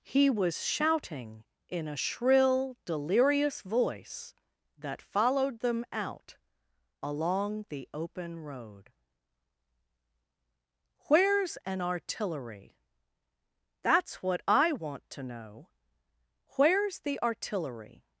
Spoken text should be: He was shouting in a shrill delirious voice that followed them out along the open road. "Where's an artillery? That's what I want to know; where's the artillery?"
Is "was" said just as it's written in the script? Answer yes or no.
yes